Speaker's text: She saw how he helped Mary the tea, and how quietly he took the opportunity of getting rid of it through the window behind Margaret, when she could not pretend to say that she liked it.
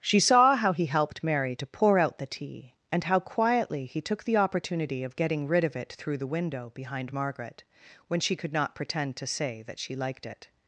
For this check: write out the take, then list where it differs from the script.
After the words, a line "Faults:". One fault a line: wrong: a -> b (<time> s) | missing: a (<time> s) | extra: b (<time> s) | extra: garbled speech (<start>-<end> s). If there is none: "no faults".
She saw how he helped Mary to pour out the tea, and how quietly he took the opportunity of getting rid of it through the window behind Margaret, when she could not pretend to say that she liked it.
Faults:
extra: to pour out (1.6 s)